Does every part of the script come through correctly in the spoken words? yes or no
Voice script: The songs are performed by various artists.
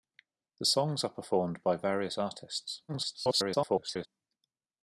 no